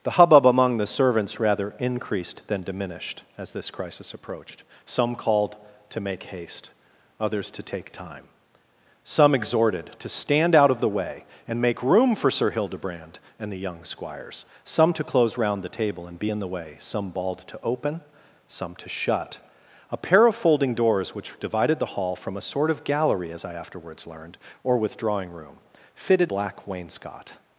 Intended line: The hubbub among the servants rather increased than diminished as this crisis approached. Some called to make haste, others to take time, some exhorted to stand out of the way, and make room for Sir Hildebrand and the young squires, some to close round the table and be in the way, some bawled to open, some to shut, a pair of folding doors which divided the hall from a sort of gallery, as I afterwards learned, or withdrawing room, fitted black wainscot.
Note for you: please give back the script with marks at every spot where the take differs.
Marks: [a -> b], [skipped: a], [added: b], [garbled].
The hubbub among the servants rather increased than diminished as this crisis approached. Some called to make haste, others to take time, some exhorted to stand out of the way, and make room for Sir Hildebrand and the young squires, some to close round the table and be in the way, some bawled to open, some to shut, a pair of folding doors which divided the hall from a sort of gallery, as I afterwards learned, or withdrawing room, fitted black wainscot.